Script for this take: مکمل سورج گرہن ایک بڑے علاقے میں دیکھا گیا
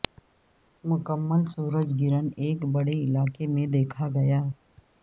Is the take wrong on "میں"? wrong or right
right